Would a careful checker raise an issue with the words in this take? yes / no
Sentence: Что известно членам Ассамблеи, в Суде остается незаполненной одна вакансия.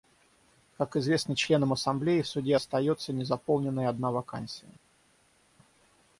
yes